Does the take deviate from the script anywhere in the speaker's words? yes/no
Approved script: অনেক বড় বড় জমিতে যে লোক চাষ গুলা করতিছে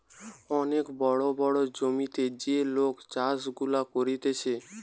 no